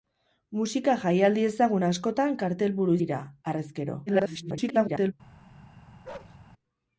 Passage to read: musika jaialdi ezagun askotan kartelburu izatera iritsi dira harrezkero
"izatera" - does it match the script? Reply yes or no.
no